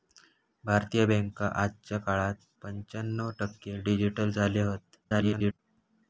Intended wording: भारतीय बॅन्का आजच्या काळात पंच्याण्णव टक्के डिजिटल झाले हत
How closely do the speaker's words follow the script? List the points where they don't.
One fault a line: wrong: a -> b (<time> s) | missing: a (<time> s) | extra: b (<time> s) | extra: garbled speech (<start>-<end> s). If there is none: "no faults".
extra: garbled speech (5.0-5.6 s)